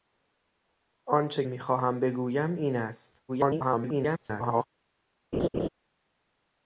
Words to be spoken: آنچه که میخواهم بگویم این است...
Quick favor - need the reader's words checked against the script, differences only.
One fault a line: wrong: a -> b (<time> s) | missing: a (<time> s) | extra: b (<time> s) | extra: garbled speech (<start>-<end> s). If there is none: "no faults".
missing: که (1.4 s)
extra: garbled speech (3.3-4.7 s)